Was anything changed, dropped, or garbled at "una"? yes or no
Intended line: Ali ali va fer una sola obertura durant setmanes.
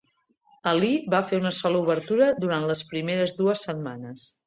no